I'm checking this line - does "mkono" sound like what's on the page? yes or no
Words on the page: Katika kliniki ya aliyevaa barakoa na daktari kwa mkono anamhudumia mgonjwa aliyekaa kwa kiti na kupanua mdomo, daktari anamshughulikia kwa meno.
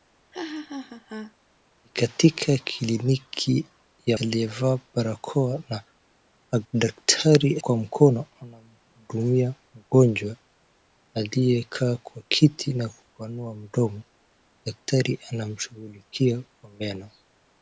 yes